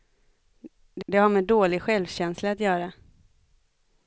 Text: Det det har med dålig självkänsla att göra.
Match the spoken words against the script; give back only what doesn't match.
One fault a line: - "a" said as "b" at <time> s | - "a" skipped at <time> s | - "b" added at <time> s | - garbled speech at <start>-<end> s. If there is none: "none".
none